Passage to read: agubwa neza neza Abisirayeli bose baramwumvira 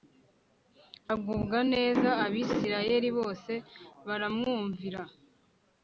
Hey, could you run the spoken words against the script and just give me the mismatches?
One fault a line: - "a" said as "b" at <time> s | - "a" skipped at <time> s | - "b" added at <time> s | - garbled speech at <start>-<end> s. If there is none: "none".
- "neza" skipped at 2.1 s